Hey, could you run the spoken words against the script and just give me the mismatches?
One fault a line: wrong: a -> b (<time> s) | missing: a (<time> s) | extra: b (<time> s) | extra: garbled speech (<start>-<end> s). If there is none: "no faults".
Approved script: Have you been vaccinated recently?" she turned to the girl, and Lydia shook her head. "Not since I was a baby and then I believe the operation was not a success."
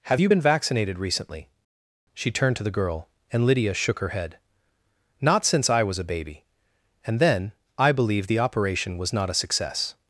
no faults